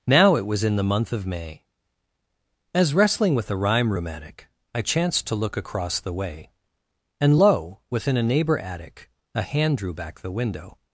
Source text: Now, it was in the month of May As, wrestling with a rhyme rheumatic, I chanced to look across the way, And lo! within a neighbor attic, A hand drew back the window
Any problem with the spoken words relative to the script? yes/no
no